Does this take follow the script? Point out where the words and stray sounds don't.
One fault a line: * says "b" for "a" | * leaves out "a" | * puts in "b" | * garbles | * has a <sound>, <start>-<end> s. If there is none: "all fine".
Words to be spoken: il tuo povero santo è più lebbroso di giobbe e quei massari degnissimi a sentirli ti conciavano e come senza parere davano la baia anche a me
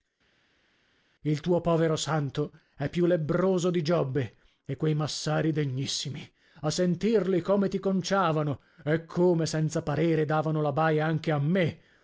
* puts in "come"